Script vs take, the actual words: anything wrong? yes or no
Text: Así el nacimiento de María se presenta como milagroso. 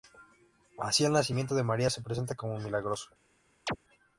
no